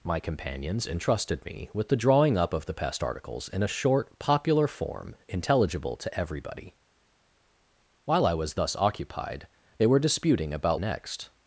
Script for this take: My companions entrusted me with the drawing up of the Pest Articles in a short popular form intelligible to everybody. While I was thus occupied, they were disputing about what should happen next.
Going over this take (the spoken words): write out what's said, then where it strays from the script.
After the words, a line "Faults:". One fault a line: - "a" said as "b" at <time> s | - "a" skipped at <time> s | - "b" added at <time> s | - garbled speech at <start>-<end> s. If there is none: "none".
My companions entrusted me with the drawing up of the Pest Articles in a short popular form intelligible to everybody. While I was thus occupied, they were disputing about next.
Faults:
- "what should happen" skipped at 10.8 s